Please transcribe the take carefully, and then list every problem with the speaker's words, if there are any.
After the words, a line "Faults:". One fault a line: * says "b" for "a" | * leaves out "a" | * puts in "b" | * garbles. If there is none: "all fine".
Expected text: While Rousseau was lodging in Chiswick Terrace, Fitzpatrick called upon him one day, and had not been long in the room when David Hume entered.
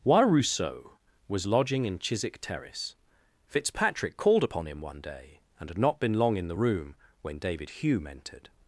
While Rousseau was lodging in Chiswick Terrace, Fitzpatrick called upon him one day, and had not been long in the room when David Hume entered.
Faults:
all fine